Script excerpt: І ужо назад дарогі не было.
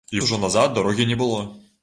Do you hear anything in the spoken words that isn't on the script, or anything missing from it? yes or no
no